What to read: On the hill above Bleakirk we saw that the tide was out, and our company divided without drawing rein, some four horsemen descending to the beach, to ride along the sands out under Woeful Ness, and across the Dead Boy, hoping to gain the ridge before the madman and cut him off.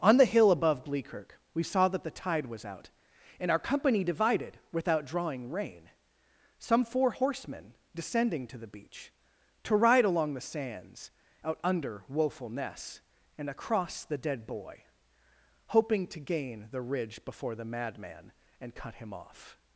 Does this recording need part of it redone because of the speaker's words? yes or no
no